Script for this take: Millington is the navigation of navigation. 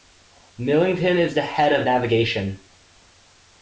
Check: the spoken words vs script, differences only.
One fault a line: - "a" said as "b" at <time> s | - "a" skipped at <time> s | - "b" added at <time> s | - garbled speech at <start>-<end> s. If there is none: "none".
- "navigation" said as "head" at 1.4 s